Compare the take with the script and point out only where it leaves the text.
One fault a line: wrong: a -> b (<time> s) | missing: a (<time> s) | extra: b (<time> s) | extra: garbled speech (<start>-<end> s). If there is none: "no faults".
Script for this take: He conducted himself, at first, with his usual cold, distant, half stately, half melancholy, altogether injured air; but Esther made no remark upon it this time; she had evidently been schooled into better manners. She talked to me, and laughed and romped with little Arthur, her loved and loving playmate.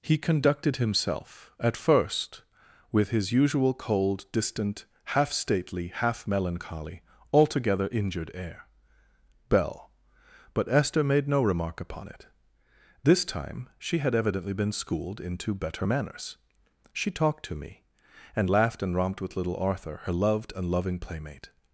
extra: bell (9.5 s)